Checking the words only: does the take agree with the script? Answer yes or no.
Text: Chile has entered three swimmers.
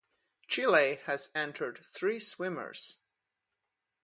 yes